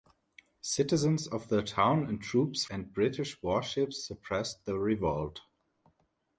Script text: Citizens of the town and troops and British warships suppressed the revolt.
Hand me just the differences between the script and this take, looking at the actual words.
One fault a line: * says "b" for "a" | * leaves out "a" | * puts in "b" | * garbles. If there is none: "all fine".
all fine